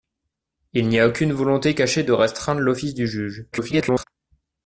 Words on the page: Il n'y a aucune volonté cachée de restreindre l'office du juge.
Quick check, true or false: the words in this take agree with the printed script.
false